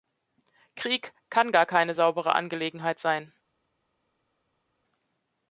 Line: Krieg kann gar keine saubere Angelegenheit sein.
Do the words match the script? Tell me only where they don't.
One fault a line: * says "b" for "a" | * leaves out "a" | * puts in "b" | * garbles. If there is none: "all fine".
all fine